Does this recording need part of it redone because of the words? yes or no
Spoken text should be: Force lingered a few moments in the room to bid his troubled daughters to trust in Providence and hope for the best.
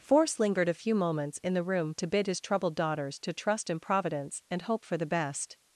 no